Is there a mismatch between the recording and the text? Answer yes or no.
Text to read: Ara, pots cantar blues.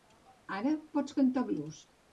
no